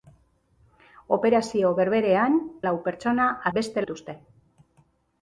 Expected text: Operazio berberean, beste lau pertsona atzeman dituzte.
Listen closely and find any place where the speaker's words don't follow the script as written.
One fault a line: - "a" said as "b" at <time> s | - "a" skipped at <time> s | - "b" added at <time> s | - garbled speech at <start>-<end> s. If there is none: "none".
- "beste" skipped at 2.4 s
- "atzeman" said as "beste" at 3.6 s